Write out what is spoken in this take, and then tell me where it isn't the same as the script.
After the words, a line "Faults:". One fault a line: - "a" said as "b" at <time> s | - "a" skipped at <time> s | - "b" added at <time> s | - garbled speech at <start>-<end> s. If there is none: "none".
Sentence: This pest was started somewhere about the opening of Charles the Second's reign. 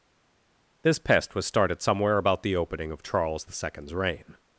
This pest was started somewhere about the opening of Charles the Second's reign.
Faults:
none